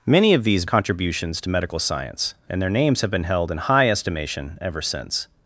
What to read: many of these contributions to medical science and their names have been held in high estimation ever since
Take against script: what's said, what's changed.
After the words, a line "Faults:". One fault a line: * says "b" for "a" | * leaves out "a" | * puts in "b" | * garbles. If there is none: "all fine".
many of these contributions to medical science and their names have been held in high estimation ever since
Faults:
all fine